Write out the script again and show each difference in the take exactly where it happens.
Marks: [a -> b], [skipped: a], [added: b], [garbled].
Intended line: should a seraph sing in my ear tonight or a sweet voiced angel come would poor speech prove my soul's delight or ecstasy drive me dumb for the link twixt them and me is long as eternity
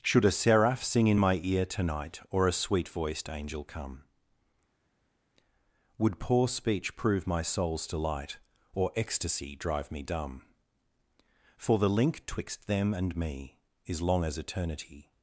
should a seraph sing in my ear tonight or a sweet voiced angel come would poor speech prove my soul's delight or ecstasy drive me dumb for the link twixt them and me is long as eternity